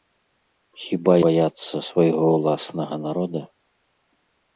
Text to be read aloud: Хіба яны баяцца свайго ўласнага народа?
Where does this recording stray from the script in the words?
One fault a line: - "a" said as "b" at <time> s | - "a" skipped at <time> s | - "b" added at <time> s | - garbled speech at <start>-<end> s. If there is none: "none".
- "яны" skipped at 1.1 s